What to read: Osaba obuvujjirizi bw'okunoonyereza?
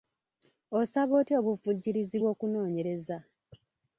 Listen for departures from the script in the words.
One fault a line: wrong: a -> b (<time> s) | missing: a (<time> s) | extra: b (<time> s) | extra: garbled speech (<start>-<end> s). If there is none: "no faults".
extra: otya (1.2 s)